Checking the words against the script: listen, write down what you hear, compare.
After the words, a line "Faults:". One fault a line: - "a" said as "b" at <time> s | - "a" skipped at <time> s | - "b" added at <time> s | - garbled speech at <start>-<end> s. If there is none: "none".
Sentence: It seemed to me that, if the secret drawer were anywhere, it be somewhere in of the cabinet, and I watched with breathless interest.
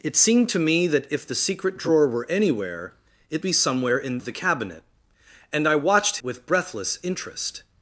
It seemed to me that, if the secret drawer were anywhere, it be somewhere in of the cabinet, and I watched with breathless interest.
Faults:
none